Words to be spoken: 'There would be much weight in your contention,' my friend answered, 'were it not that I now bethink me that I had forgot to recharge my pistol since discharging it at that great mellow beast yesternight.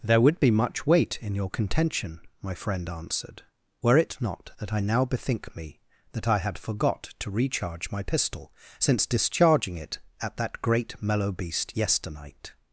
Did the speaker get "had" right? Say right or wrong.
right